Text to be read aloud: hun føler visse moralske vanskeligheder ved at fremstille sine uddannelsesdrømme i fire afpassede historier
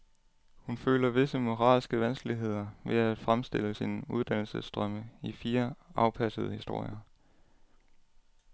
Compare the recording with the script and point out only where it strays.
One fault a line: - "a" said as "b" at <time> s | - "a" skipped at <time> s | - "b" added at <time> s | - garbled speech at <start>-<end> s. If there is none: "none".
none